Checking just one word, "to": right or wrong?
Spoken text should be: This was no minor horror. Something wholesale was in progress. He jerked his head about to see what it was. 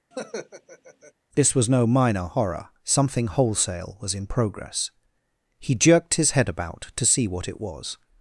right